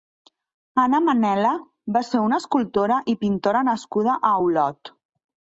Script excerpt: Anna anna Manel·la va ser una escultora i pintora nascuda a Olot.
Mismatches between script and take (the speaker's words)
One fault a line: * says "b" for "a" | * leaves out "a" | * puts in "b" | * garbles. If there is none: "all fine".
* leaves out "anna"